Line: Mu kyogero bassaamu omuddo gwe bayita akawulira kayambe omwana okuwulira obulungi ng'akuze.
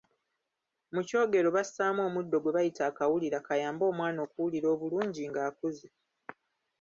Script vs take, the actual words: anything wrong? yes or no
no